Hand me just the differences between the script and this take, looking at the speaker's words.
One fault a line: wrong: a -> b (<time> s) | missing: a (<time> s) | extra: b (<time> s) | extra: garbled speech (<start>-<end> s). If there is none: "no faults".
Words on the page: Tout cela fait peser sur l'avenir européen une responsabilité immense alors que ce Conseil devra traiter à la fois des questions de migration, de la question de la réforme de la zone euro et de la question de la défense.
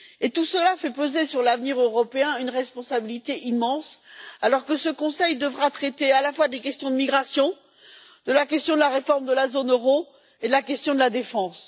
no faults